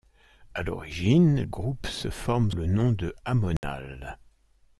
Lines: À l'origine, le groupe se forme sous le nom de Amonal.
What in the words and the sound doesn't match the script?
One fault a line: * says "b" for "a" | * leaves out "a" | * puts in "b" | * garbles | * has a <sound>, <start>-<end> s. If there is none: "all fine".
* leaves out "le"
* leaves out "sous"
* has a dropout, 3.6-3.6 s